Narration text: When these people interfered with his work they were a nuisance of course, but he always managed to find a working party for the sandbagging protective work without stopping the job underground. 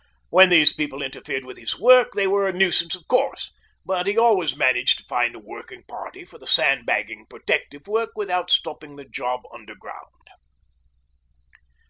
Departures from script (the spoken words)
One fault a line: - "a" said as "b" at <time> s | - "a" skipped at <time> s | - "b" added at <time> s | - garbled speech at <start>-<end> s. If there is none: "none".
none